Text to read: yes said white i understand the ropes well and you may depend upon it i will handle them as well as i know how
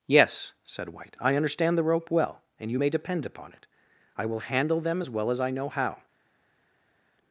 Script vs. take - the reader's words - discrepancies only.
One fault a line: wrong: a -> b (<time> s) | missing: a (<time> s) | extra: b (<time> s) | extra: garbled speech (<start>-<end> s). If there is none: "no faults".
wrong: ropes -> rope (1.8 s)